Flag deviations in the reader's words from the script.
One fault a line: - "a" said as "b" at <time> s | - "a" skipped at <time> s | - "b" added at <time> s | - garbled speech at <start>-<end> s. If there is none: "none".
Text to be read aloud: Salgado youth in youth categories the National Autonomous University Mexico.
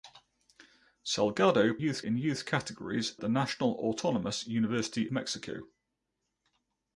none